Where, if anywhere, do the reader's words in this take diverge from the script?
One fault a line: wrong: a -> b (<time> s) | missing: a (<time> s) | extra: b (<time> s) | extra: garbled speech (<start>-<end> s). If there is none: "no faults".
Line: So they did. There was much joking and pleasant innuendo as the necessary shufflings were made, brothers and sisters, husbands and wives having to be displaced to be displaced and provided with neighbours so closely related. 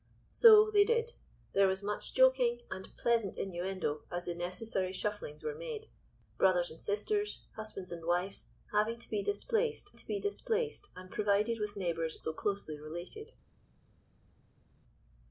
no faults